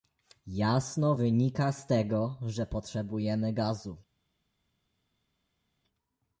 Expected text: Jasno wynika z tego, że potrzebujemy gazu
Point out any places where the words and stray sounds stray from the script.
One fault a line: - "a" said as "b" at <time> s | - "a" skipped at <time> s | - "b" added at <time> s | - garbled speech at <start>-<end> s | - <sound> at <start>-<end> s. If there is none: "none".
none